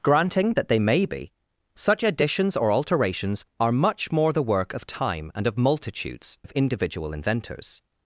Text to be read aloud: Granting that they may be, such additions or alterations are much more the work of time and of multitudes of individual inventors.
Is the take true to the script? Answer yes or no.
yes